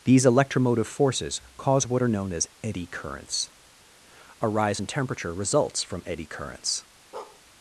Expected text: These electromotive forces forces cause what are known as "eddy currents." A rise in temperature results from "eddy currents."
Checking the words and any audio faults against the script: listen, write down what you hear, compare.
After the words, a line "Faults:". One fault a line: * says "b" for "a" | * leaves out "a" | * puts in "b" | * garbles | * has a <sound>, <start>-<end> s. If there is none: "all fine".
These electromotive forces cause what are known as "eddy currents." A rise in temperature results from "eddy currents."
Faults:
* leaves out "forces"
* has a bark, 7.1-7.4 s